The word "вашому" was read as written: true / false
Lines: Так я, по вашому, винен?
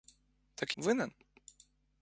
false